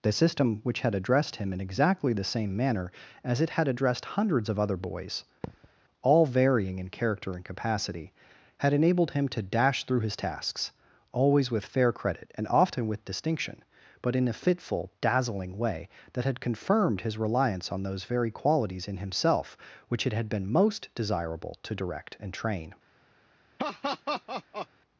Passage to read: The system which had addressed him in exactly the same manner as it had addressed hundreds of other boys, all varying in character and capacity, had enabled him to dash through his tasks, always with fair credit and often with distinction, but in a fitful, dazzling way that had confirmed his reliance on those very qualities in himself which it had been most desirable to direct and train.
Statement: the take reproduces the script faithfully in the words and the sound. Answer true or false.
false